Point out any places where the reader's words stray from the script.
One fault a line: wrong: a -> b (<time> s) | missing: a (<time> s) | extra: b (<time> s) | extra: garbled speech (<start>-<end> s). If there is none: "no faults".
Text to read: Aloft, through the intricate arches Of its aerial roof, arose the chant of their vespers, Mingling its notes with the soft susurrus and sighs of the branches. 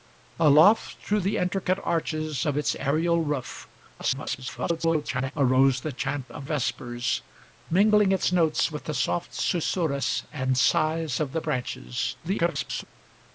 extra: garbled speech (4.0-5.3 s)
missing: their (6.5 s)
extra: garbled speech (12.2-12.8 s)